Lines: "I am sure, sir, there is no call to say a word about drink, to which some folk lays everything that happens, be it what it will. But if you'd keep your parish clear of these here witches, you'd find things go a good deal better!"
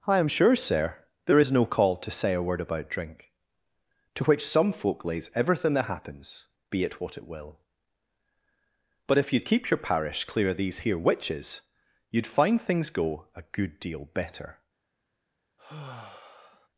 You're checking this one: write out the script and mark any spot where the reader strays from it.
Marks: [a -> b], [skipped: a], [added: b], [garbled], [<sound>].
"I am sure, sir, there is no call to say a word about drink, to which some folk lays everything that happens, be it what it will. But if you'd keep your parish clear of these here witches, you'd find things go a good deal better!" [sigh]